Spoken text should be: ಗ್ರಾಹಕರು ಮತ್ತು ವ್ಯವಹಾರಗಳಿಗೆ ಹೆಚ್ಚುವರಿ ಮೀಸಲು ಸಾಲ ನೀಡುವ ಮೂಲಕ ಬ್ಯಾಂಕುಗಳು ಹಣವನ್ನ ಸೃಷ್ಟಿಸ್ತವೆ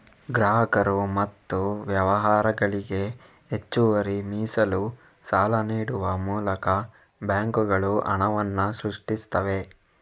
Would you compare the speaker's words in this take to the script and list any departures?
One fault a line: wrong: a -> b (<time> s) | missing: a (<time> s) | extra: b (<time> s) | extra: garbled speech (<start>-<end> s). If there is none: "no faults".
no faults